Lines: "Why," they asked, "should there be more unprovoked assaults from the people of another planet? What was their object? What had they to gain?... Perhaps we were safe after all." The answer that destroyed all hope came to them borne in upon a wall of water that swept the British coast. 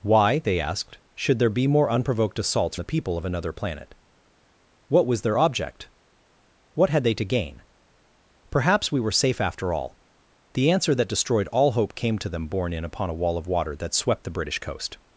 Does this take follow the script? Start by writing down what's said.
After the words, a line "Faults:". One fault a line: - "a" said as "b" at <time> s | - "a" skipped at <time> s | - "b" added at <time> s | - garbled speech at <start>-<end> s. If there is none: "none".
"Why," they asked, "should there be more unprovoked assaults the people of another planet? What was their object? What had they to gain?... Perhaps we were safe after all." The answer that destroyed all hope came to them borne in upon a wall of water that swept the British coast.
Faults:
- "from" skipped at 2.8 s